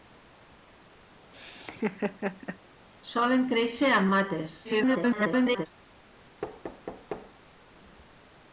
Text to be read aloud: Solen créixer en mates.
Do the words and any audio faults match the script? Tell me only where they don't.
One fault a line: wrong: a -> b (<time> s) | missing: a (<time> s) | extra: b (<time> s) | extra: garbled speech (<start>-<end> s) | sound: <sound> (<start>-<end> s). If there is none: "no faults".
sound: laugh (1.3-2.6 s)
extra: garbled speech (4.6-5.7 s)
sound: thud (6.4-7.3 s)